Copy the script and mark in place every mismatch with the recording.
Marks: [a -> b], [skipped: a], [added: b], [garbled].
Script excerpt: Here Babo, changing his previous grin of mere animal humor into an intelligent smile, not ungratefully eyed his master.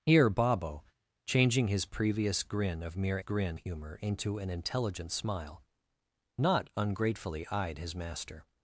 Here Babo, changing his previous grin of mere [animal -> grin] humor into an intelligent smile, not ungratefully eyed his master.